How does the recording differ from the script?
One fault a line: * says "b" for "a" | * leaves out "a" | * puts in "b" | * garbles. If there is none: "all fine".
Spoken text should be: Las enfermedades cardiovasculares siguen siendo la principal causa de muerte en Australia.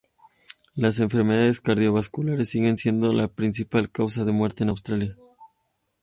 all fine